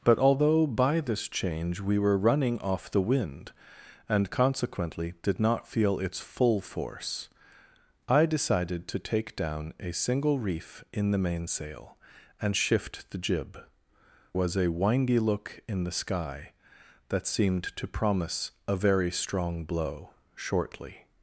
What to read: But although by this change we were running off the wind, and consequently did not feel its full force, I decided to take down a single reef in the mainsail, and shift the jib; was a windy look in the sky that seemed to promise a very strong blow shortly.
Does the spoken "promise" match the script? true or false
true